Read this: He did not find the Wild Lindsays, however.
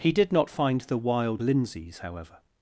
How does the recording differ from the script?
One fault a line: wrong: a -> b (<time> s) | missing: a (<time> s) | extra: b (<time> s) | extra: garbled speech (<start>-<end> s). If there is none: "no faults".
no faults